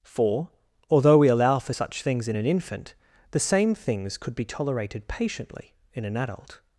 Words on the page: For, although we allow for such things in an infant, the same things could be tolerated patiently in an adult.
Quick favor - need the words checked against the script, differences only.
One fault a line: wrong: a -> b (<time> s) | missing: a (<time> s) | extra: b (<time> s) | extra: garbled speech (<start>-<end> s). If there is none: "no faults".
no faults